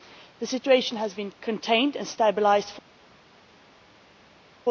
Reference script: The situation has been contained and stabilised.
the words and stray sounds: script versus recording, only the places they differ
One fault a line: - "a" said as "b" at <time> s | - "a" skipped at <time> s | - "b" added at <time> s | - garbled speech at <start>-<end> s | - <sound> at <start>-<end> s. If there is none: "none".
none